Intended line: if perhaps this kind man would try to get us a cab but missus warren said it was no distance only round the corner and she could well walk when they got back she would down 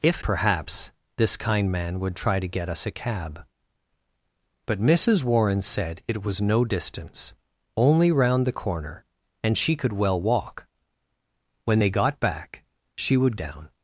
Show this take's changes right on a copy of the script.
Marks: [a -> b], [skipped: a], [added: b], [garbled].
if perhaps this kind man would try to get us a cab but missus warren said it was no distance only round the corner and she could well walk when they got back she would down